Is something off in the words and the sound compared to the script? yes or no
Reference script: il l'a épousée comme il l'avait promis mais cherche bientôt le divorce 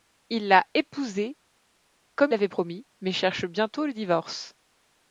yes